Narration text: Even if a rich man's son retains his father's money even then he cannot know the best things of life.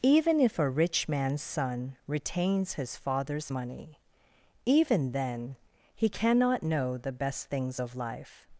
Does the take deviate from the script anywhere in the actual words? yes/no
no